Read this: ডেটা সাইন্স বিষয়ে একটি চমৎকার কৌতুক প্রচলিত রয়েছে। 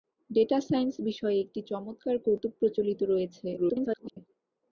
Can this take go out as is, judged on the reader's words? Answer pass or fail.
fail